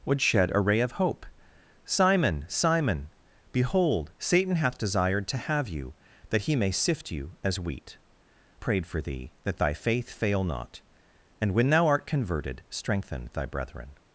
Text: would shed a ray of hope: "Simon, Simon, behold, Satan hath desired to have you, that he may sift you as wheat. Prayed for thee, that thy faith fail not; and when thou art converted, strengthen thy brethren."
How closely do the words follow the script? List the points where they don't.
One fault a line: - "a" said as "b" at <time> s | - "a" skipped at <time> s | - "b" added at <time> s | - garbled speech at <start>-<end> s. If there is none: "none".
none